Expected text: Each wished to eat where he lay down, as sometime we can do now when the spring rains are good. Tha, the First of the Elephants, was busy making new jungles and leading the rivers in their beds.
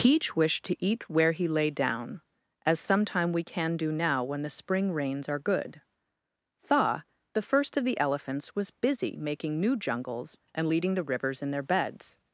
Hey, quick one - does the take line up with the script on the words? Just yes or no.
yes